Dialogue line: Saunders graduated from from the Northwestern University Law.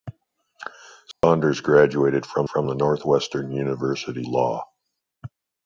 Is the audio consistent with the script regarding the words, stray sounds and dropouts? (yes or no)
no